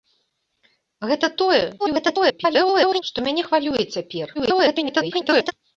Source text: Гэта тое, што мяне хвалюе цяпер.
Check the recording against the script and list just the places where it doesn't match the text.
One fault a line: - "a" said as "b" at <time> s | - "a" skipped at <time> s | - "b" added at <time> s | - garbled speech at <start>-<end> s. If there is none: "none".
- garbled speech at 1.8-3.0 s
- garbled speech at 4.3-5.5 s